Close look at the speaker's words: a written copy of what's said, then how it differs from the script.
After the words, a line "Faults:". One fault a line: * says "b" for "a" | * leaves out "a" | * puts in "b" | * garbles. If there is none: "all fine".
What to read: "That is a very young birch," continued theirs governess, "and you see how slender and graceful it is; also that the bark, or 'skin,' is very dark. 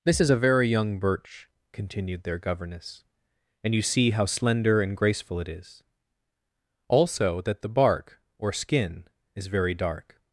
"This is a very young birch," continued their governess, "and you see how slender and graceful it is; also that the bark, or 'skin,' is very dark.
Faults:
* says "This" for "That"
* says "their" for "theirs"